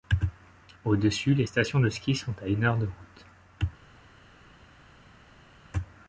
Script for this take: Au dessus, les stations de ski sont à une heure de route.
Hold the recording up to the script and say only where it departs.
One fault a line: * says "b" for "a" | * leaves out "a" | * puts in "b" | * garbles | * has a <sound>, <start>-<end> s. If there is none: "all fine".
all fine